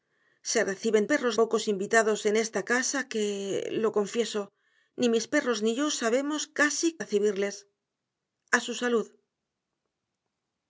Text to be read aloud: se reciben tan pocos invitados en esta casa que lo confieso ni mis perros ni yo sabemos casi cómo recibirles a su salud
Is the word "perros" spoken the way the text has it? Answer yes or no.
yes